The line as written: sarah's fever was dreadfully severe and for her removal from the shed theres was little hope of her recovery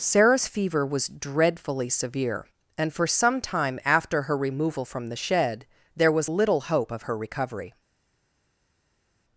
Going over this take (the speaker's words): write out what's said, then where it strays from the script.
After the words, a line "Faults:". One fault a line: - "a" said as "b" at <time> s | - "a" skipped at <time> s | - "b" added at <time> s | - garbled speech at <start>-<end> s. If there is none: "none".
sarah's fever was dreadfully severe and for some time after her removal from the shed there was little hope of her recovery
Faults:
- "some time after" added at 3.0 s
- "theres" said as "there" at 5.9 s